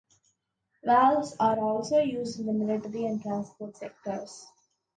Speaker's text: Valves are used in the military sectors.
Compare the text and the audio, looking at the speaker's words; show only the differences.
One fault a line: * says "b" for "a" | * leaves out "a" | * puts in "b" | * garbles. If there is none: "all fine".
* puts in "also"
* puts in "and transport"